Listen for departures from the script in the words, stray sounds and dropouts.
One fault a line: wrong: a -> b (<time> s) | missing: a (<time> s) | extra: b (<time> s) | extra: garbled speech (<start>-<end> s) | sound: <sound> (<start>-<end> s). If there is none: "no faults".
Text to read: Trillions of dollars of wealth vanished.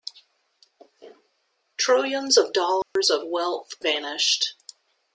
sound: dropout (2.8-3.0 s)